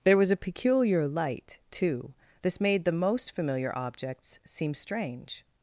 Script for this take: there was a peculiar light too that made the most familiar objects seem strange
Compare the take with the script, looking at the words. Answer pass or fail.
fail